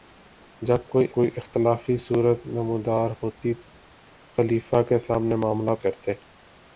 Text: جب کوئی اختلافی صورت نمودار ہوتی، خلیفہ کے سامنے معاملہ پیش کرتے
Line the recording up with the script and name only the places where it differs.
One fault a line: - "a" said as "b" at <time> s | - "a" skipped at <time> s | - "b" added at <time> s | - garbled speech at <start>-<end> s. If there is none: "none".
- "کوئی" added at 1.1 s
- "پیش" skipped at 5.7 s